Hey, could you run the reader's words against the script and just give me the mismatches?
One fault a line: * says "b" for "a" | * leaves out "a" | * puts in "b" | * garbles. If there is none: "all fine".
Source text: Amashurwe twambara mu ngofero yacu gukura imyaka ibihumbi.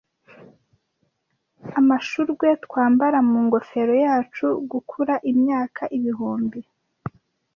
all fine